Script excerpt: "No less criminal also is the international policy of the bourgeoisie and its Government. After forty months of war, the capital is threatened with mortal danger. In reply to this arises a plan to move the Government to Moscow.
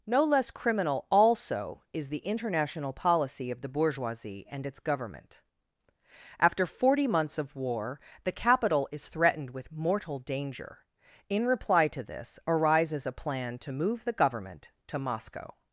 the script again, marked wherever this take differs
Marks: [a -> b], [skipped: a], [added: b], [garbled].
"No less criminal also is the international policy of the bourgeoisie and its Government. After forty months of war, the capital is threatened with mortal danger. In reply to this arises a plan to move the Government to Moscow.